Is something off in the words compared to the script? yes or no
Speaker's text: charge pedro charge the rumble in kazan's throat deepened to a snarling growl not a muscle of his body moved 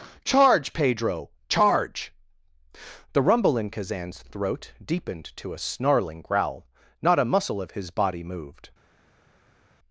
no